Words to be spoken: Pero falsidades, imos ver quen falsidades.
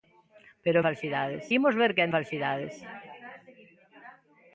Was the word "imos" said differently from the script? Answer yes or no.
no